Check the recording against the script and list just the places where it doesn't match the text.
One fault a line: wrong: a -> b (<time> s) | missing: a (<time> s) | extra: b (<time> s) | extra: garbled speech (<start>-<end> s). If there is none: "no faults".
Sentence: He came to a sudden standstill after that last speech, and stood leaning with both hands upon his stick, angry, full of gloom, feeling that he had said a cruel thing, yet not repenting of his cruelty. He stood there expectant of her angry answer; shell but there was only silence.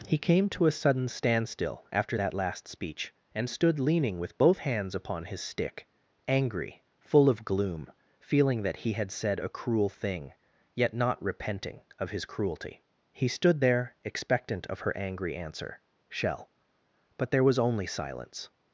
no faults